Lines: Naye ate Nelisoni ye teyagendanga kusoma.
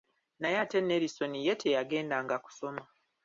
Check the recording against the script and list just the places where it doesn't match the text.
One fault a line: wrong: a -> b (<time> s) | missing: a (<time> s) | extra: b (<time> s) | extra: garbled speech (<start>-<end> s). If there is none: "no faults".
no faults